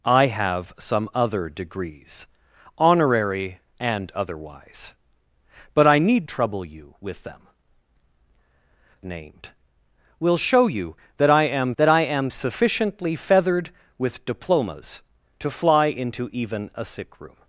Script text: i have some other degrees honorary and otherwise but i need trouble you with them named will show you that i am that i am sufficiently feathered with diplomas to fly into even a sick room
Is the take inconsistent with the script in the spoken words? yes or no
no